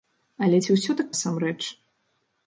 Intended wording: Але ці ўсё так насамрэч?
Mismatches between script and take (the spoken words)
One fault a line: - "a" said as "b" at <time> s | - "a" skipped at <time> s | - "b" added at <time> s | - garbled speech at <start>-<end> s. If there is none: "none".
none